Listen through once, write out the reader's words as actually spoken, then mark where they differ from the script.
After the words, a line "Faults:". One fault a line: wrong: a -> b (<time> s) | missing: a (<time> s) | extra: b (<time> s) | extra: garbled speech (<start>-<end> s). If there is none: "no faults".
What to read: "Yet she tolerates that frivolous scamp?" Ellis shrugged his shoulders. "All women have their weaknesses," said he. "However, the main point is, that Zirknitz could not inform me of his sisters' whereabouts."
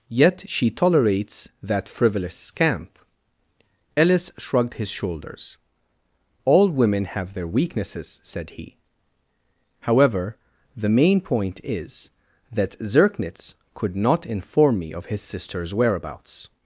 "Yet she tolerates that frivolous scamp?" Ellis shrugged his shoulders. "All women have their weaknesses," said he. "However, the main point is, that Zirknitz could not inform me of his sisters' whereabouts."
Faults:
no faults